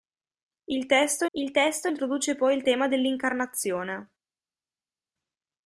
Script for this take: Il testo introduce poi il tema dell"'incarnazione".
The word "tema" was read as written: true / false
true